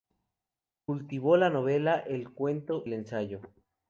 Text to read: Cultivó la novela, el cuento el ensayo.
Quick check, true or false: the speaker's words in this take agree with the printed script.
true